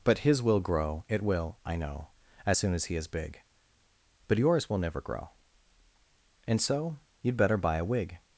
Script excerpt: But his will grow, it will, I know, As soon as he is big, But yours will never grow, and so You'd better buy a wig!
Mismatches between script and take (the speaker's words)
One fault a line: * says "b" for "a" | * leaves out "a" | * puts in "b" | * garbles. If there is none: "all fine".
all fine